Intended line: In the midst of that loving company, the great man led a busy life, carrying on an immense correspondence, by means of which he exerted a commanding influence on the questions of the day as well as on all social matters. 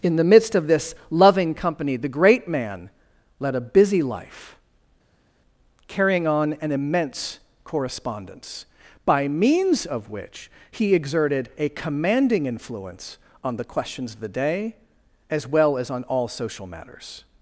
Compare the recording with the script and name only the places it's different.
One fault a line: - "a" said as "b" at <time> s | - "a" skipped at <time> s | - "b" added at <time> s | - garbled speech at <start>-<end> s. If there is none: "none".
- "that" said as "this" at 0.7 s